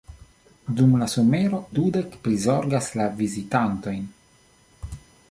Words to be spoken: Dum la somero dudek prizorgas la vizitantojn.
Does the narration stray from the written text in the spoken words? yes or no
no